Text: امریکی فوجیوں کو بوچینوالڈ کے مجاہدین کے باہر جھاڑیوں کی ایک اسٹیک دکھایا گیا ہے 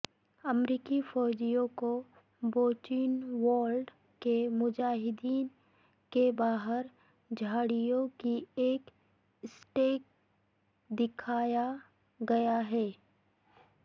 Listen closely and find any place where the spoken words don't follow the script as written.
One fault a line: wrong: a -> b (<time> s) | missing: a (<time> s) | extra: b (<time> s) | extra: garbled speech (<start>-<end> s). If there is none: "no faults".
no faults